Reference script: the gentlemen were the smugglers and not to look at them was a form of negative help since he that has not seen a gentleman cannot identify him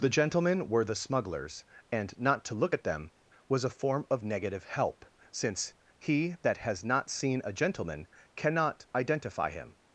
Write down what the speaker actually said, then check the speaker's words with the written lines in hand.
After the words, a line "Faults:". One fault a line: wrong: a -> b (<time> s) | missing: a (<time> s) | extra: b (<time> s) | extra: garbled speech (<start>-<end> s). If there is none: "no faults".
the gentlemen were the smugglers and not to look at them was a form of negative help since he that has not seen a gentleman cannot identify him
Faults:
no faults